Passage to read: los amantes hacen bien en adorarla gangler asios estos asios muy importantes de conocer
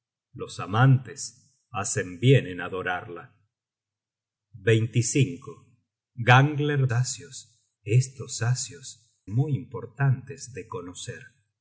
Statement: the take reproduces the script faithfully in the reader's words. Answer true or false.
true